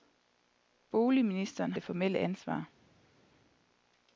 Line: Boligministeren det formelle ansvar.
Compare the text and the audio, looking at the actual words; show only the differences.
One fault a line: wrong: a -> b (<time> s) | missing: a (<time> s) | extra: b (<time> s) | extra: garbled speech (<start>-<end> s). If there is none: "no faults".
no faults